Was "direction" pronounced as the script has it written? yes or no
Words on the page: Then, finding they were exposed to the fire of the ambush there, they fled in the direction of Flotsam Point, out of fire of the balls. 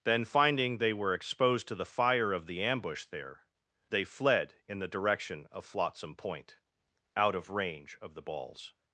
yes